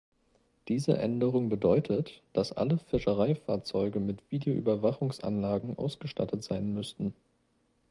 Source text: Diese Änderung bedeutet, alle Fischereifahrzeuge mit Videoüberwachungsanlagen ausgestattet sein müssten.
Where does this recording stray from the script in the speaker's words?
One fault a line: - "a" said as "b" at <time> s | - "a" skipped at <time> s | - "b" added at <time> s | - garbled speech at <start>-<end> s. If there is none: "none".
- "dass" added at 2.3 s